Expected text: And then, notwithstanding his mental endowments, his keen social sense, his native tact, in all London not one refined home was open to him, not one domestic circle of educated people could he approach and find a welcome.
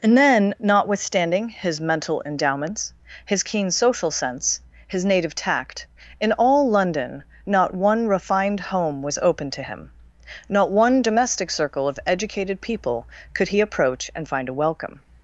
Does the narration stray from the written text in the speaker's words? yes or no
no